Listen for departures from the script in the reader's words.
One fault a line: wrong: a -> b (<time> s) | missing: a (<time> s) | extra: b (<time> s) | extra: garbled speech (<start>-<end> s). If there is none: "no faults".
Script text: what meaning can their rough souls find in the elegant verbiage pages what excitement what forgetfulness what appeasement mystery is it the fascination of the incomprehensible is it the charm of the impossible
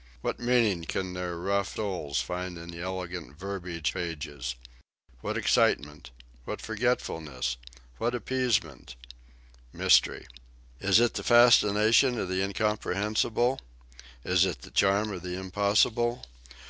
no faults